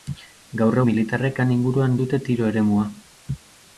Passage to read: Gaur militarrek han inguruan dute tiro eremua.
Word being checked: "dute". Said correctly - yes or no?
yes